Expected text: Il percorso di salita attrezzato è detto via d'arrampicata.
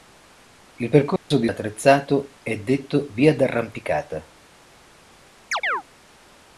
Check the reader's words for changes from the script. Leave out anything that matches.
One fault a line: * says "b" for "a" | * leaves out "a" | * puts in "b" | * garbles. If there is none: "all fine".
* leaves out "salita"